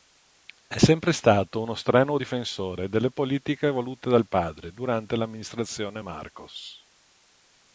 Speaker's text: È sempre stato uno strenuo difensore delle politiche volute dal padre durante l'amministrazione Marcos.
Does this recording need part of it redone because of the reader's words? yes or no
no